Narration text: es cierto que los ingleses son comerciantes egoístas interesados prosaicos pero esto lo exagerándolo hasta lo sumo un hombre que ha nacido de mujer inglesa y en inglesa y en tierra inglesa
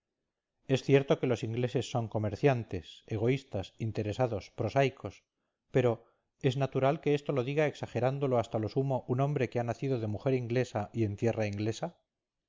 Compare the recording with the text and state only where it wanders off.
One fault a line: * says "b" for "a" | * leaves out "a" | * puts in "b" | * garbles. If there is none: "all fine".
* puts in "es natural que"
* puts in "diga"
* leaves out "inglesa y en"